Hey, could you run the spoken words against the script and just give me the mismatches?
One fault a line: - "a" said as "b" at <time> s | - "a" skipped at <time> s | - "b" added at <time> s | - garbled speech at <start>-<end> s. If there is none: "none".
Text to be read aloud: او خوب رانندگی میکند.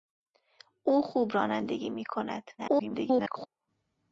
- garbled speech at 2.6-3.5 s